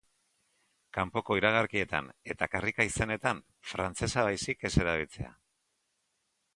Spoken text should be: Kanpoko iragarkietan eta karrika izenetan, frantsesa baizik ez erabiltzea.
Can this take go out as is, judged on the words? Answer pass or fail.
pass